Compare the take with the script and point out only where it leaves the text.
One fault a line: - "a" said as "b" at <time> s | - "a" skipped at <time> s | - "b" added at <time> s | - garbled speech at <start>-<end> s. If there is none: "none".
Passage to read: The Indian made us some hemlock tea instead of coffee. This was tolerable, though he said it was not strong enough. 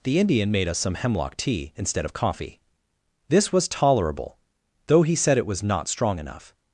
none